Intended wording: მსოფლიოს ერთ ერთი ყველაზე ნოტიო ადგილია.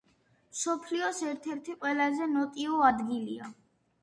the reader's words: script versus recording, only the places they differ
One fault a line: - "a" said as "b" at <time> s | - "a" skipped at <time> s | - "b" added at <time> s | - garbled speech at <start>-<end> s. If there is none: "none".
none